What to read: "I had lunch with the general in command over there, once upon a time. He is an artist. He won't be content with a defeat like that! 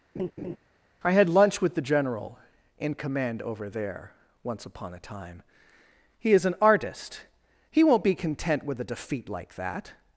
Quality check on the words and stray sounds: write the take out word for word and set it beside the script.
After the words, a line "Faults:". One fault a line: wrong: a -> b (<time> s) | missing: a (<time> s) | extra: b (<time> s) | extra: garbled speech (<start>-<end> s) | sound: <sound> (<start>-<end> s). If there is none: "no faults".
"I had lunch with the general in command over there, once upon a time. He is an artist. He won't be content with a defeat like that!
Faults:
sound: laugh (0.2-0.6 s)